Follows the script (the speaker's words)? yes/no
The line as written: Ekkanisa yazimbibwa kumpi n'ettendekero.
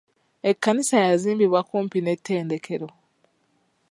yes